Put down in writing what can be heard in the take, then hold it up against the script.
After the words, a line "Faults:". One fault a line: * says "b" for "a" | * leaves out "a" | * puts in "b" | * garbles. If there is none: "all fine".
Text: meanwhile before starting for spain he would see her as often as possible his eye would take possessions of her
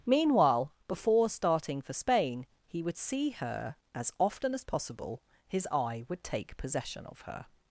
meanwhile before starting for spain he would see her as often as possible his eye would take possession of her
Faults:
* says "possession" for "possessions"